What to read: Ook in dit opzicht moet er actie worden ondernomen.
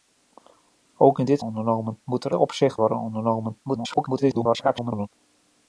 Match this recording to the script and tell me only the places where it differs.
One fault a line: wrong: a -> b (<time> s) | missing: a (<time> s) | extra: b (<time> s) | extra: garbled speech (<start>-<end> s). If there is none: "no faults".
wrong: opzicht -> ondernomen (1.4 s)
wrong: actie -> opzicht (2.3 s)
extra: garbled speech (3.6-5.1 s)